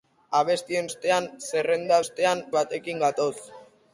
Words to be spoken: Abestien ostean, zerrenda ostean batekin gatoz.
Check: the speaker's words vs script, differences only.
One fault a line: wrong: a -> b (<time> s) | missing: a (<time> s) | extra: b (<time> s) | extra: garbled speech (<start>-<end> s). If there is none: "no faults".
no faults